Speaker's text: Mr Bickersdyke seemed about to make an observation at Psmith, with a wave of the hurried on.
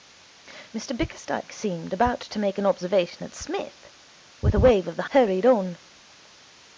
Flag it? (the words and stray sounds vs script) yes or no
no